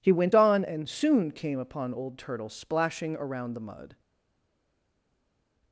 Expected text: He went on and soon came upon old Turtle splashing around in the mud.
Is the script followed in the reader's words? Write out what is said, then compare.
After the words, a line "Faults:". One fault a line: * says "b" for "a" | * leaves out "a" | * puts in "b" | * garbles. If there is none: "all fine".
He went on and soon came upon old Turtle splashing around the mud.
Faults:
* leaves out "in"